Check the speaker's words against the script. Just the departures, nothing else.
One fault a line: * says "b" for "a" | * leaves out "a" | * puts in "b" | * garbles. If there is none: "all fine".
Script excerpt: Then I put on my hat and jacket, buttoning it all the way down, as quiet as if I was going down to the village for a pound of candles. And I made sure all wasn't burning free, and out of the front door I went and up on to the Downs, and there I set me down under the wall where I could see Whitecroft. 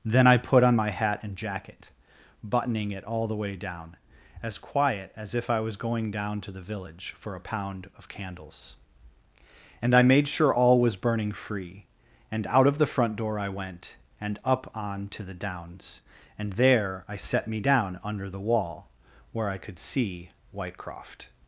* says "was" for "wasn't"